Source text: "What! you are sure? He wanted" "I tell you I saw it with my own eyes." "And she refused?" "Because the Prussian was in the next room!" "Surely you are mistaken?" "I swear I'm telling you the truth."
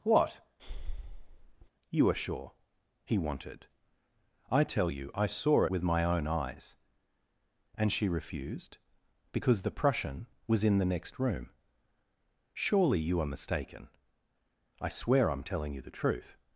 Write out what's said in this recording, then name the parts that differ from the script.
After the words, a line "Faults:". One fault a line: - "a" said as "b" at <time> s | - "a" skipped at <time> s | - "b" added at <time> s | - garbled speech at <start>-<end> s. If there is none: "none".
"What! you are sure? He wanted" "I tell you I saw with my own eyes." "And she refused?" "Because the Prussian was in the next room!" "Surely you are mistaken?" "I swear I'm telling you the truth."
Faults:
- "it" skipped at 5.7 s